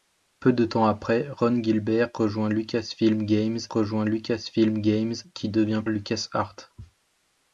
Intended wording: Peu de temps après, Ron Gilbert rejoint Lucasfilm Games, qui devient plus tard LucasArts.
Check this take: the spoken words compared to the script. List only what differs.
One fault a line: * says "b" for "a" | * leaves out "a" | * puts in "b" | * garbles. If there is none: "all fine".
* puts in "rejoint Lucasfilm Games"
* leaves out "plus tard"